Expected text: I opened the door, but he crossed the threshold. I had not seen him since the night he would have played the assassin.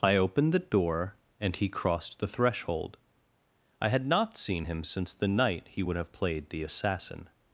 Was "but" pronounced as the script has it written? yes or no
no